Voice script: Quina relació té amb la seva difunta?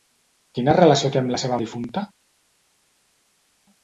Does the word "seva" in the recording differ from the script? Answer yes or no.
no